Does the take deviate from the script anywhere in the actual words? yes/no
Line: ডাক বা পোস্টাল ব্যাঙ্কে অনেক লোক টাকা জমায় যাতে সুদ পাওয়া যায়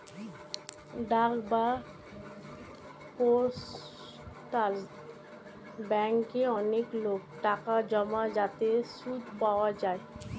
no